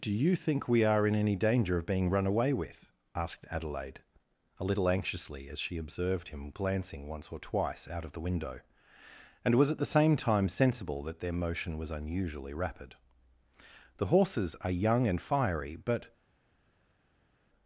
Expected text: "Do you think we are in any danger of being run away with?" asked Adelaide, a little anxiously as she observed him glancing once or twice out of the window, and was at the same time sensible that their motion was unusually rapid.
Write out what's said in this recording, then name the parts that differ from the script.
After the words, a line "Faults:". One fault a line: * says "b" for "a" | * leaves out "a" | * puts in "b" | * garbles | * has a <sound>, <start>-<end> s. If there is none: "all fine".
"Do you think we are in any danger of being run away with?" asked Adelaide, a little anxiously as she observed him glancing once or twice out of the window, and was at the same time sensible that their motion was unusually rapid. "The horses are young and fiery, but
Faults:
* puts in "The horses are young and fiery but"